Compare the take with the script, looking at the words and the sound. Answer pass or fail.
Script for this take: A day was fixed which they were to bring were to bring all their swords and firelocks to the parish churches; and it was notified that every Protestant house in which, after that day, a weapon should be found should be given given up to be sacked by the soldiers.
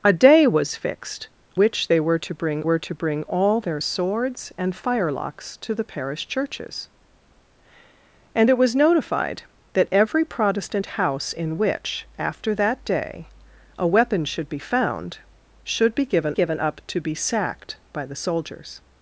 pass